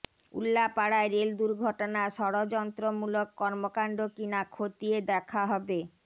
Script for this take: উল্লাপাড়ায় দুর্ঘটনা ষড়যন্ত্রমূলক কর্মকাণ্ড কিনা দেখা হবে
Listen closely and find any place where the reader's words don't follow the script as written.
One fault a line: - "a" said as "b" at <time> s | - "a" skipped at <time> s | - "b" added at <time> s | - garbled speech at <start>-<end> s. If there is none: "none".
- "রেল" added at 1.1 s
- "খতিয়ে" added at 4.5 s